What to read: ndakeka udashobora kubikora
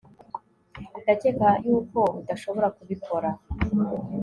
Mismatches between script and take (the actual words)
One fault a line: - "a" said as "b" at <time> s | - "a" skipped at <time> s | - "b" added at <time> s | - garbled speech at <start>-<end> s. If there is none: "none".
- "yuko" added at 1.6 s